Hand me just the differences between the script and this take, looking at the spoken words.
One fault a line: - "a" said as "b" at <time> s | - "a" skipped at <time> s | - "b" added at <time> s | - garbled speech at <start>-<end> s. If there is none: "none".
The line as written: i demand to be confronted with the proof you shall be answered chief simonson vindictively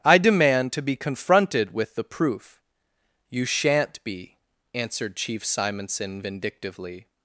- "shall" said as "shan't" at 3.4 s